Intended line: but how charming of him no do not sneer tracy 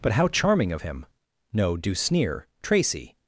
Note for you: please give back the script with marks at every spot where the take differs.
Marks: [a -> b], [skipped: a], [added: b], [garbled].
but how charming of him no do [skipped: not] sneer tracy